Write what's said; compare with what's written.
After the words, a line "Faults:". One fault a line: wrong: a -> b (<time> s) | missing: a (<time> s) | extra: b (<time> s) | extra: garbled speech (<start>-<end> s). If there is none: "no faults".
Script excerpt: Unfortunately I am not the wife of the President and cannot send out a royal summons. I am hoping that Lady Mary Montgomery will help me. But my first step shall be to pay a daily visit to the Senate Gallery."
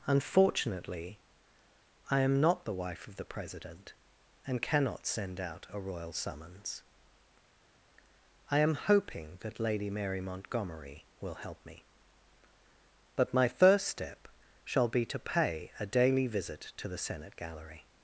Unfortunately I am not the wife of the President and cannot send out a royal summons. I am hoping that Lady Mary Montgomery will help me. But my first step shall be to pay a daily visit to the Senate Gallery."
Faults:
no faults